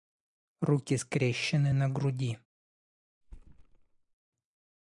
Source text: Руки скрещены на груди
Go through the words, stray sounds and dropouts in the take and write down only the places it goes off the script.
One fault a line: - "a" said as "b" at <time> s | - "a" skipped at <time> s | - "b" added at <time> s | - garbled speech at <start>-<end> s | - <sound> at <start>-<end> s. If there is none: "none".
- thud at 3.2-4.2 s